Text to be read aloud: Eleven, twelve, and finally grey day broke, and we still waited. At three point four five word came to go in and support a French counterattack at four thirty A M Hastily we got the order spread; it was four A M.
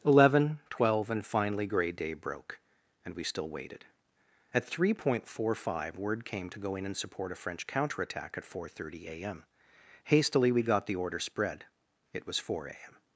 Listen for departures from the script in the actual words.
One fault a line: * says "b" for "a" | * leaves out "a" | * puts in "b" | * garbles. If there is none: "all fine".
all fine